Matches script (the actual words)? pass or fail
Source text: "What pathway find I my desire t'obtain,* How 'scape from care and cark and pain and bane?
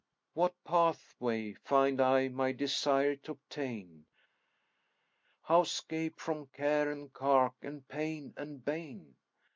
pass